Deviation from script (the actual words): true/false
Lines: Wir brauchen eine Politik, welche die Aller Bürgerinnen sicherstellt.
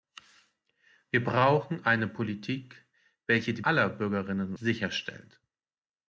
false